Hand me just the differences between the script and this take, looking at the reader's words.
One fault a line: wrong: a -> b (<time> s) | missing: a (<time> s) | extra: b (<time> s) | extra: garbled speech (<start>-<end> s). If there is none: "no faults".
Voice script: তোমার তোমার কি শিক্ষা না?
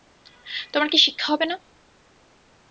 missing: তোমার (0.9 s)
extra: হবে (1.3 s)